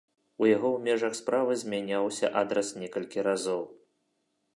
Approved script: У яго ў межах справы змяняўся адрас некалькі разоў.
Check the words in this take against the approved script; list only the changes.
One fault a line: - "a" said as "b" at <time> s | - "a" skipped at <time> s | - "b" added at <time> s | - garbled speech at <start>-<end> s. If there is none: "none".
none